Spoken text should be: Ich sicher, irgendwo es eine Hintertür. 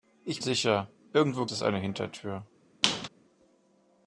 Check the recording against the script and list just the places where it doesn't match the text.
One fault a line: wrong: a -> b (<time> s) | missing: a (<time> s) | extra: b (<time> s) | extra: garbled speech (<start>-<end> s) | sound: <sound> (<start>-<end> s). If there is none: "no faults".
sound: squeak (2.8-3.1 s)